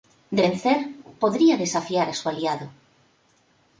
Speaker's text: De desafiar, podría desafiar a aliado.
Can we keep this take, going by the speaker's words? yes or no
no